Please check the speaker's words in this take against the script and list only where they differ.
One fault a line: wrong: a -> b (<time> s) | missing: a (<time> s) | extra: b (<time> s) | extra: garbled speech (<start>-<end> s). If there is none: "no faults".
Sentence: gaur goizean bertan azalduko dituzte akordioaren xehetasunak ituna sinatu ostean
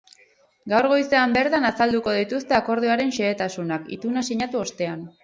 no faults